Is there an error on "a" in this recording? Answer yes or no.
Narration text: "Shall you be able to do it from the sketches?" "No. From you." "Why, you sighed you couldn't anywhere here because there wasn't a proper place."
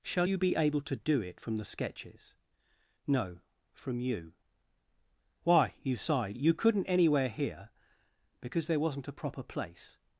no